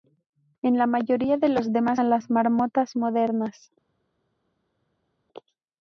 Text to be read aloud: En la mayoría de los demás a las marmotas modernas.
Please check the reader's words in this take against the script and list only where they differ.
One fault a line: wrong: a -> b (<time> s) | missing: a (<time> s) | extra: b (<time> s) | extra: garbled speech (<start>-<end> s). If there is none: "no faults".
no faults